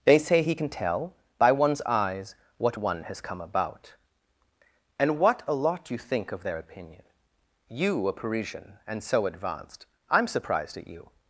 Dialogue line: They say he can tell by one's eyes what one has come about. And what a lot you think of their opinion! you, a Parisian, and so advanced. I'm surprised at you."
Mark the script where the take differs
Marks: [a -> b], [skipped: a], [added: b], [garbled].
They say he can tell by one's eyes what one has come about. And what a lot you think of their opinion! you, a Parisian, and so advanced. I'm surprised at you."